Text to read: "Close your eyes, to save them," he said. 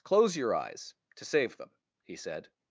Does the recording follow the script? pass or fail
pass